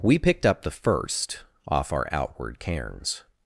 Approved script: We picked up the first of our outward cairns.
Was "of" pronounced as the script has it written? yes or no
no